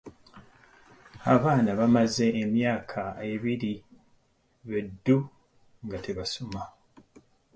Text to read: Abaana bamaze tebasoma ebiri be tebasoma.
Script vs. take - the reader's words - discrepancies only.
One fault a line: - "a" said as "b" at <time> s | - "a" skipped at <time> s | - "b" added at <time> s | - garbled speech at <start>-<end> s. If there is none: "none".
- "tebasoma" said as "emyaka" at 2.4 s
- "ddu nga" added at 4.9 s